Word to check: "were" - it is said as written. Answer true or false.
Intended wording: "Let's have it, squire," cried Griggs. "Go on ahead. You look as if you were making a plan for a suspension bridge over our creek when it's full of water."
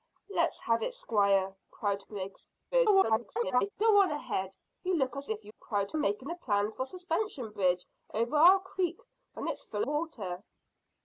false